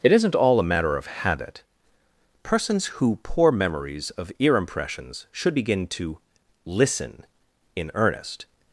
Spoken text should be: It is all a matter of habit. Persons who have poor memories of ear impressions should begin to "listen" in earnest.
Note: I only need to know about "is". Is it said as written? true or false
false